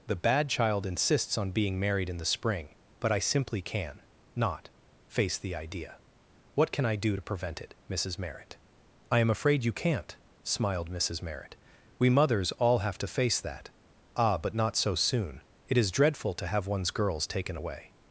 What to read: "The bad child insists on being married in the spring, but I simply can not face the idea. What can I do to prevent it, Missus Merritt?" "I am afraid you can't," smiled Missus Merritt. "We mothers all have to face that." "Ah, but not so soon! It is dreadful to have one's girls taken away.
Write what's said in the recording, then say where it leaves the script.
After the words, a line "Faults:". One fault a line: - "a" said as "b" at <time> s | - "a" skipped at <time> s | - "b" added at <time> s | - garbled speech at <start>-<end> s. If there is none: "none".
"The bad child insists on being married in the spring, but I simply can not face the idea. What can I do to prevent it, Missus Merritt?" "I am afraid you can't," smiled Missus Merritt. "We mothers all have to face that." "Ah, but not so soon! It is dreadful to have one's girls taken away.
Faults:
none